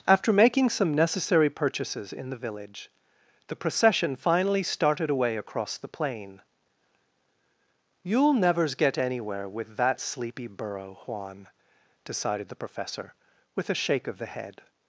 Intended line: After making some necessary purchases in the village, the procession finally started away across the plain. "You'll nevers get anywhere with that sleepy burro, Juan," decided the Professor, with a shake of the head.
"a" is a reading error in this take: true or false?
false